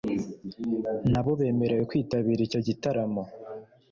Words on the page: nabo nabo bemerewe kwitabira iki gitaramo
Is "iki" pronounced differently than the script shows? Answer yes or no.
yes